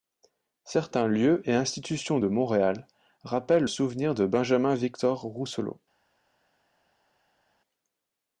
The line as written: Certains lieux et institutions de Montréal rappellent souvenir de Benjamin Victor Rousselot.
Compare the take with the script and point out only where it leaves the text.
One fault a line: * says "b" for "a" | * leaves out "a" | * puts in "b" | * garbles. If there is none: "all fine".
all fine